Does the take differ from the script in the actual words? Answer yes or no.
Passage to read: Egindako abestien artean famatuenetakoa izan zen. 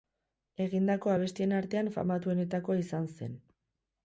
no